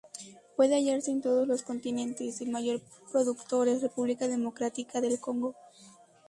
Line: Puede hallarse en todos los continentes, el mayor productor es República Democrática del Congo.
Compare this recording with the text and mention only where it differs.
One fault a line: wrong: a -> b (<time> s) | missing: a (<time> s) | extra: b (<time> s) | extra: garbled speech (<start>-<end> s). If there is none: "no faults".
no faults